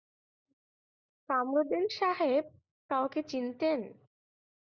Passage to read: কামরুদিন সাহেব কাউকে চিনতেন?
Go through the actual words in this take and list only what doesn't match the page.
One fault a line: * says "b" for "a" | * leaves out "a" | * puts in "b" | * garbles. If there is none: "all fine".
all fine